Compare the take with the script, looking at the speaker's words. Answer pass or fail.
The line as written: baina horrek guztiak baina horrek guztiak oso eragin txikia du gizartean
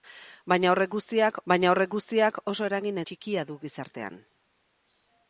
pass